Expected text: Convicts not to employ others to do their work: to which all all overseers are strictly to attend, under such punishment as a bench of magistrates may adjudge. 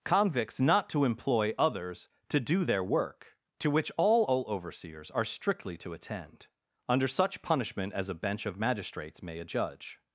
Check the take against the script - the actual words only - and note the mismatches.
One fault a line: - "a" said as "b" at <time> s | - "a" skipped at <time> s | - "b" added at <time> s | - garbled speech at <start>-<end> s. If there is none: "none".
none